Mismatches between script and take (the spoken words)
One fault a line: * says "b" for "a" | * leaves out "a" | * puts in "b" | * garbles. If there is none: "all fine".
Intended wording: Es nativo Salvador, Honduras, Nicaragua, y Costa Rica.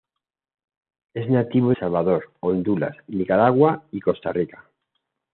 all fine